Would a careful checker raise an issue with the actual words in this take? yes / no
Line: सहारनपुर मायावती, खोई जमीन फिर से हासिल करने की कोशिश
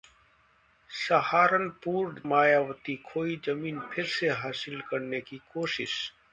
no